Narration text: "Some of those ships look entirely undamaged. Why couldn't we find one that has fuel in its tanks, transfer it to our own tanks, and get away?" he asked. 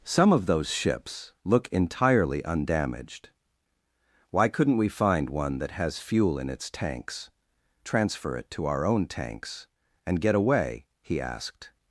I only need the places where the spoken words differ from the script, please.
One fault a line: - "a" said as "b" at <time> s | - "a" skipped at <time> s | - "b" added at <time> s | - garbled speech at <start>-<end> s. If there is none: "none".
none